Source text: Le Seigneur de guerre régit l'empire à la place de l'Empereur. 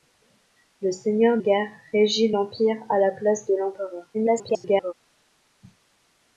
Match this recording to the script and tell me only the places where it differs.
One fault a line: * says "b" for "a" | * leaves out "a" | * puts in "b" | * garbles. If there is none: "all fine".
* leaves out "de"
* garbles